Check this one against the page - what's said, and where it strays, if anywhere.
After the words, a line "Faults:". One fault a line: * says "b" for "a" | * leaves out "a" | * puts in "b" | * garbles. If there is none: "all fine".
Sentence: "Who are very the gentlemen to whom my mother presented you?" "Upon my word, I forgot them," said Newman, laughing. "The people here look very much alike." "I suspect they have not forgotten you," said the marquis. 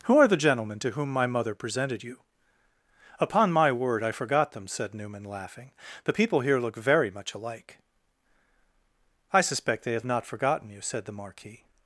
"Who are the gentlemen to whom my mother presented you?" "Upon my word, I forgot them," said Newman, laughing. "The people here look very much alike." "I suspect they have not forgotten you," said the marquis.
Faults:
* leaves out "very"